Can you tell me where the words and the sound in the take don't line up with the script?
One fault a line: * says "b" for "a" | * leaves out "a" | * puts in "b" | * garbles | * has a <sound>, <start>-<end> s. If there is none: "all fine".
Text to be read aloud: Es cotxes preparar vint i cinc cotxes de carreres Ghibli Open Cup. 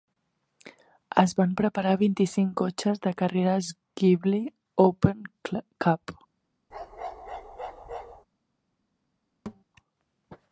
* says "van" for "cotxes"
* has a bark, 6.7-8.3 s
* has a thud, 9.5-9.6 s